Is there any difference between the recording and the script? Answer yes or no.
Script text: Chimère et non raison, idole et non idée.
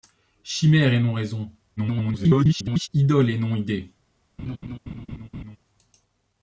yes